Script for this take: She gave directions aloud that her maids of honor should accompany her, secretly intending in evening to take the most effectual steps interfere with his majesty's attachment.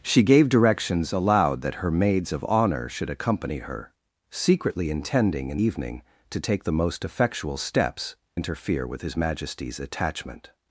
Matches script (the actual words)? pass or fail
pass